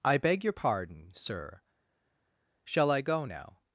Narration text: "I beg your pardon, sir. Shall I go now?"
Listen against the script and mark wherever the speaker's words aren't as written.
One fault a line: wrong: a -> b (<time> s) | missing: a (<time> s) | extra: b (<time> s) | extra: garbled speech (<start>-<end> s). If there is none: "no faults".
no faults